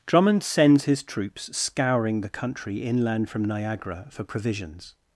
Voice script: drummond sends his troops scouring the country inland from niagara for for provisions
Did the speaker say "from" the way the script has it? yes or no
yes